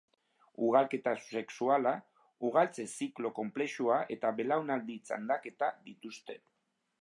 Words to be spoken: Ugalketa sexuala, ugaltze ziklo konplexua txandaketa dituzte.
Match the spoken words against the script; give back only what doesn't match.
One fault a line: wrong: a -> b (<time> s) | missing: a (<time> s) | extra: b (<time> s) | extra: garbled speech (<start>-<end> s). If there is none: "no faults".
extra: eta belaunaldi (4.2 s)